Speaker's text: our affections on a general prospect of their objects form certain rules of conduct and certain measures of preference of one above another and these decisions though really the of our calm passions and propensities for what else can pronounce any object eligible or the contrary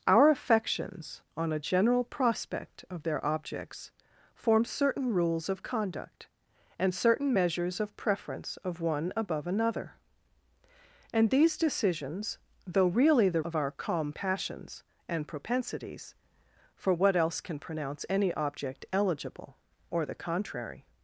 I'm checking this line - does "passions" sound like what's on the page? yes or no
yes